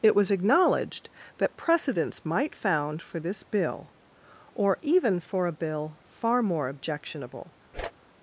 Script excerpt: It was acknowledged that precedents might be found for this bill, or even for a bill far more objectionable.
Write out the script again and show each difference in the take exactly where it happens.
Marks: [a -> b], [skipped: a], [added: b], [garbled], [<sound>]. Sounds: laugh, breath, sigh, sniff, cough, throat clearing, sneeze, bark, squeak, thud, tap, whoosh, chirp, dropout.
It was acknowledged that precedents might [skipped: be] found for this bill, or even for a bill far more objectionable. [whoosh]